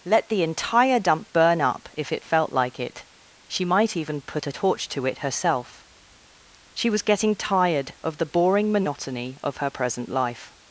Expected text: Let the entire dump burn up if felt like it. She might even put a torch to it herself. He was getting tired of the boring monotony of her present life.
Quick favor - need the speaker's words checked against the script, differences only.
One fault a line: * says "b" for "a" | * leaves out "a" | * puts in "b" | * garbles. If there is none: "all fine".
* puts in "it"
* says "She" for "He"